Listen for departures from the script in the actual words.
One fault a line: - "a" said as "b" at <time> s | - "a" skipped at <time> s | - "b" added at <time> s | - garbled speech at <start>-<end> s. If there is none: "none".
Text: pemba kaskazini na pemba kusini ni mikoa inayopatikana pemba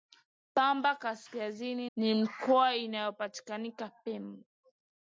- "na pemba kusini" skipped at 1.9 s